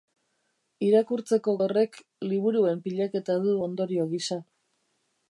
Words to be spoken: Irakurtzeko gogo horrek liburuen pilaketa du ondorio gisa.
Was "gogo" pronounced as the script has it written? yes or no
no